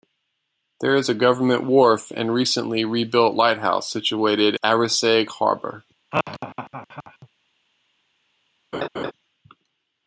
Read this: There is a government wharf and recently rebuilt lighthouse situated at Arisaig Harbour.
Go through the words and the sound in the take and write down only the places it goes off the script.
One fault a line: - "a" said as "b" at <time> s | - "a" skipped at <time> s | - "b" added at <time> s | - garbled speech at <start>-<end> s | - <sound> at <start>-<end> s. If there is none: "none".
- "at" skipped at 4.5 s
- laugh at 6.1-7.3 s
- laugh at 8.7-9.1 s